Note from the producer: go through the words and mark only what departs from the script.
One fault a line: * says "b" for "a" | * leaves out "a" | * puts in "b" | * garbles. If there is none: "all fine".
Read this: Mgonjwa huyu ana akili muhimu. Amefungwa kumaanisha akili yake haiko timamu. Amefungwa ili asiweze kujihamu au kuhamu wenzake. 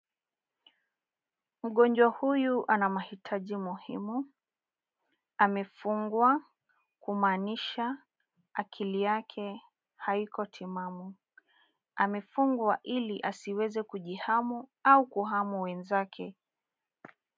* says "mahitaji" for "akili"